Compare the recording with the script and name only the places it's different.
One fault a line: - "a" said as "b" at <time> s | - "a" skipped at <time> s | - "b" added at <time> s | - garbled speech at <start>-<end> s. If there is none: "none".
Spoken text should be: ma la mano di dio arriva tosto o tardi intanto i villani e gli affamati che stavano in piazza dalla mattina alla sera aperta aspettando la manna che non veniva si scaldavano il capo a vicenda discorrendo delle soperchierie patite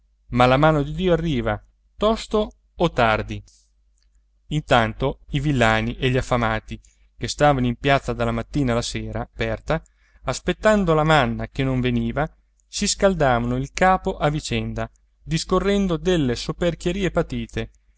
none